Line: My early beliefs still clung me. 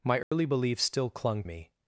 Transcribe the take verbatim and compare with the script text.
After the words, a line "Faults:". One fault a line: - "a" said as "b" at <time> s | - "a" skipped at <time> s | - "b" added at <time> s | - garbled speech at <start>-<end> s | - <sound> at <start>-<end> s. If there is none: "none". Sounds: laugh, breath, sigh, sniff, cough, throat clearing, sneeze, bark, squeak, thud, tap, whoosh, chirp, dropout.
My early beliefs still clung me.
Faults:
- dropout at 0.2-0.3 s